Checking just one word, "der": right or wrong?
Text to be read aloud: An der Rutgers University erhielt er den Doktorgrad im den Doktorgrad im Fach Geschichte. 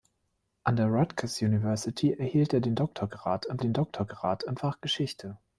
right